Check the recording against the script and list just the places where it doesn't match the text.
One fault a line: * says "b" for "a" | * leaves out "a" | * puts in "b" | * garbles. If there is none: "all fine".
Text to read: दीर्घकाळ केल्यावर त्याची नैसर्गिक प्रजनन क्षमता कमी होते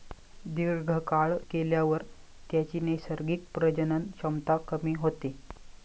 all fine